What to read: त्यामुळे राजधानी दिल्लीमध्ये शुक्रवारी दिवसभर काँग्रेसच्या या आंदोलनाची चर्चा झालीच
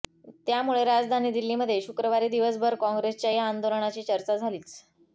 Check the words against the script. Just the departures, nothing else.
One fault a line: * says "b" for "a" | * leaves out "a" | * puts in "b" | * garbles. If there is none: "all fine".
all fine